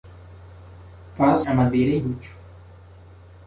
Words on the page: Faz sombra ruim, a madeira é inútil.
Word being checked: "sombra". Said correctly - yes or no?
no